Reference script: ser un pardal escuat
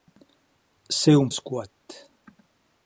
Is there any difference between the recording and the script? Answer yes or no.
yes